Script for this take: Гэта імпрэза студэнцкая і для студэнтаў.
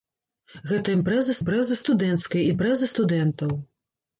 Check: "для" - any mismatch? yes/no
yes